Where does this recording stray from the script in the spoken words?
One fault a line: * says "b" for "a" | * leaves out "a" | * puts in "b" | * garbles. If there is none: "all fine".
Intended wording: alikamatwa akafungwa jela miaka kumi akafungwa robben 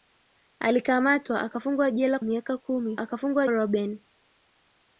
all fine